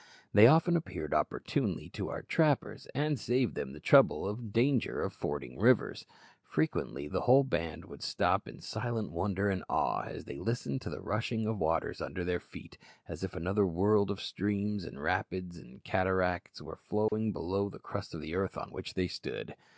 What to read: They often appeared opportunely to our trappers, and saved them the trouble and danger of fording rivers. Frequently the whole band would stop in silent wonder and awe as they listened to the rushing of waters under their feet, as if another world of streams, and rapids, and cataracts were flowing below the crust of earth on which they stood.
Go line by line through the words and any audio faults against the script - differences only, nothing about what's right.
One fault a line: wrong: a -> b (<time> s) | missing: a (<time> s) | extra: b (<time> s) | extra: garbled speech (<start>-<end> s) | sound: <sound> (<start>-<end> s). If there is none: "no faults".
sound: dropout (17.1-17.1 s)